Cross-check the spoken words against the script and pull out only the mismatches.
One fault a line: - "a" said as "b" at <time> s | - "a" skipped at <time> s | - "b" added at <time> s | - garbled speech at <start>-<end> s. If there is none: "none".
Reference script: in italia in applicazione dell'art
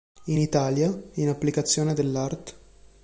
none